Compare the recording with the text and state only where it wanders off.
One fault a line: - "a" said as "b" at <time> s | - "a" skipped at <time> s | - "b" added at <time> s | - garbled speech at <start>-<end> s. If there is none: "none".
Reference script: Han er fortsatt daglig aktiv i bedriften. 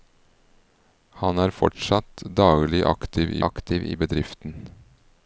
- "aktiv" added at 3.5 s